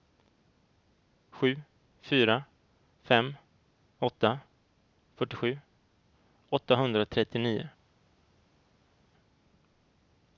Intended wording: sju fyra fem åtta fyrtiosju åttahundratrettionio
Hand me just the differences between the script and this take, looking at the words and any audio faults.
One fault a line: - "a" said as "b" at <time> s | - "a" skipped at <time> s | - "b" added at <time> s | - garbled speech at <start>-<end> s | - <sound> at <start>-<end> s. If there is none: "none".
none